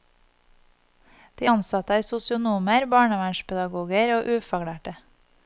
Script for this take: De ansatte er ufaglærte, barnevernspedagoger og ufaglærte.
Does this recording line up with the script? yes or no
no